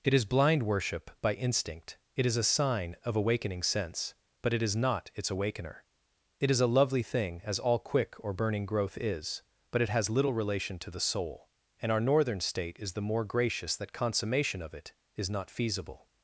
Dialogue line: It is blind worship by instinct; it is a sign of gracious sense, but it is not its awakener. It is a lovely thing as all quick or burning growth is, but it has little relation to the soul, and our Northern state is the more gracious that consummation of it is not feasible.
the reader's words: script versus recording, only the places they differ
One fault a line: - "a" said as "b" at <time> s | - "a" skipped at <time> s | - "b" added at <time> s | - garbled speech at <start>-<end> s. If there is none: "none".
- "gracious" said as "awakening" at 3.1 s